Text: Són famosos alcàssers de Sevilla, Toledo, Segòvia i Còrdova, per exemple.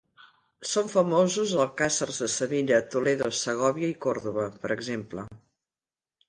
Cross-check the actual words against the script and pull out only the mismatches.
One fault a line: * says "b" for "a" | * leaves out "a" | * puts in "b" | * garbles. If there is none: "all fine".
all fine